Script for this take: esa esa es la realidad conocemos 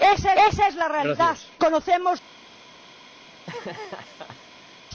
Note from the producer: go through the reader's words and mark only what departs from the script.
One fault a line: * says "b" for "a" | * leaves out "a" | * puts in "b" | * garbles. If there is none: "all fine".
all fine